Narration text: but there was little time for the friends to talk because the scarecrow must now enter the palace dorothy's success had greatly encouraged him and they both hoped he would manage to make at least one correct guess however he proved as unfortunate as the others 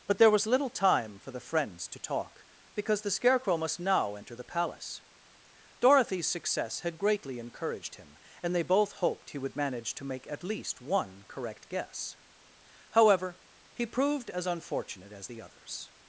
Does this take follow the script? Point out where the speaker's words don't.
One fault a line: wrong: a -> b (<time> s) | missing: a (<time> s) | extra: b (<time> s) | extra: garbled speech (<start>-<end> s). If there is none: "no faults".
no faults